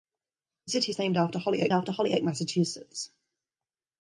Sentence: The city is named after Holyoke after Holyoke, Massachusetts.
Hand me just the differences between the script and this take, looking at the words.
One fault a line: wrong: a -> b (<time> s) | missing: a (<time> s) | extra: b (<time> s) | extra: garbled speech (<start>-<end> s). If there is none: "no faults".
no faults